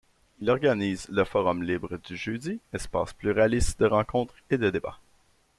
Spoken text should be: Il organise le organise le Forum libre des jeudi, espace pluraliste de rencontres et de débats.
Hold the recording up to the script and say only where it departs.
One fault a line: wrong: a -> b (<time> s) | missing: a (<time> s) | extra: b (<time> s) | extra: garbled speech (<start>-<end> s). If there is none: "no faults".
missing: organise le (1.2 s)
wrong: des -> du (2.0 s)